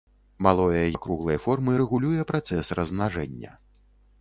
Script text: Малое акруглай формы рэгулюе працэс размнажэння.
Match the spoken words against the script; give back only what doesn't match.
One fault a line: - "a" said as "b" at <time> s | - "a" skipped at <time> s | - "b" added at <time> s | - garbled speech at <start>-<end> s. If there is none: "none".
none